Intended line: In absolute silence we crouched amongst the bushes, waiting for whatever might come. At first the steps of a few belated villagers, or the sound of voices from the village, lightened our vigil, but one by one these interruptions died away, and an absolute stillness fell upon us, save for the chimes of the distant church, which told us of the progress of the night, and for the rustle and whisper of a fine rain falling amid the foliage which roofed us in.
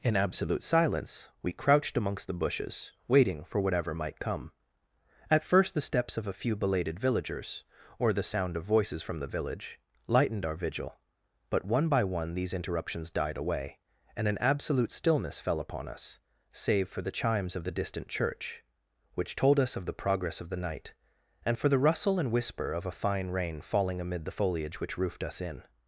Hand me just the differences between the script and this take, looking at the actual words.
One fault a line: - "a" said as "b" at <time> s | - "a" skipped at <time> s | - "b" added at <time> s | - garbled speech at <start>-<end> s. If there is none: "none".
none